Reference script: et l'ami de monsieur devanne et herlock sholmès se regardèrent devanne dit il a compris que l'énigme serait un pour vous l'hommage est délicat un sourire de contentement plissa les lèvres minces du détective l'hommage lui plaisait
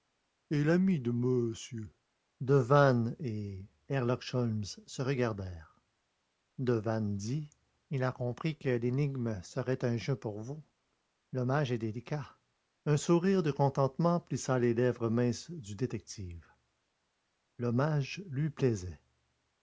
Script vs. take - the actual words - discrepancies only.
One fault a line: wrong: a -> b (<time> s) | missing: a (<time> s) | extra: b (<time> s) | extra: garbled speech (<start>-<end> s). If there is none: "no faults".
extra: jeu (10.0 s)